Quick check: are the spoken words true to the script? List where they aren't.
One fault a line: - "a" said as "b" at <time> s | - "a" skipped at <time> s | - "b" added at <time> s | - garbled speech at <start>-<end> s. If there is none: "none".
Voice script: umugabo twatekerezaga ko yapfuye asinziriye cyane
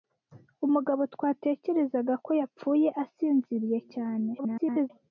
- garbled speech at 4.4-4.9 s